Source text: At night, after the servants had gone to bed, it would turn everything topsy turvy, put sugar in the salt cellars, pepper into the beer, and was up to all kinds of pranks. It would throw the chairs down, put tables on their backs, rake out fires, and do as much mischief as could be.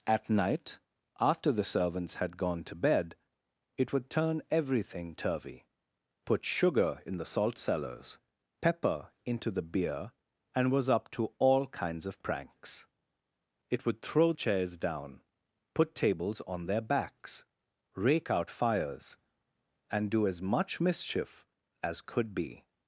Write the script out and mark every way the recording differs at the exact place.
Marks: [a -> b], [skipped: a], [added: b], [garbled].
At night, after the servants had gone to bed, it would turn everything [skipped: topsy] turvy, put sugar in the salt cellars, pepper into the beer, and was up to all kinds of pranks. It would throw [skipped: the] chairs down, put tables on their backs, rake out fires, and do as much mischief as could be.